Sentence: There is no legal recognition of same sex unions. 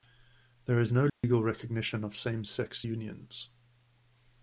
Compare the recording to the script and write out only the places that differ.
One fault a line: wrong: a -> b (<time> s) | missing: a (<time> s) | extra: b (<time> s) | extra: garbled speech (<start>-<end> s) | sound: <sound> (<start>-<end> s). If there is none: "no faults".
sound: dropout (1.1-1.2 s)